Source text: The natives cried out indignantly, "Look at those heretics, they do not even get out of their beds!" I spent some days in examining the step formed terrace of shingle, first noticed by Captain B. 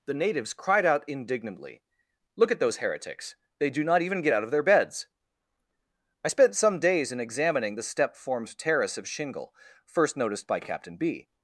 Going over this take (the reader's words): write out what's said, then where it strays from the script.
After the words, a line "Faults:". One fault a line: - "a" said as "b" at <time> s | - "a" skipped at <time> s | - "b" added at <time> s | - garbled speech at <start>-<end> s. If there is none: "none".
The natives cried out indignantly, "Look at those heretics, they do not even get out of their beds!" I spent some days in examining the step formed terrace of shingle, first noticed by Captain B.
Faults:
none